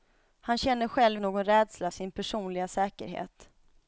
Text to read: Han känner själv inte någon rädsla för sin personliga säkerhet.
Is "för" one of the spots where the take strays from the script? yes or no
yes